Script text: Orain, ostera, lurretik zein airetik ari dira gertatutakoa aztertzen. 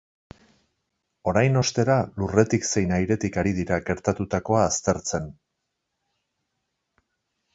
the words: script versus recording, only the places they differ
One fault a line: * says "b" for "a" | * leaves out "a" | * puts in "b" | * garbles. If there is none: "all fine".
all fine